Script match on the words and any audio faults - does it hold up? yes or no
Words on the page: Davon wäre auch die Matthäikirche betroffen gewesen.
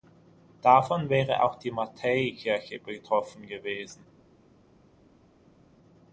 yes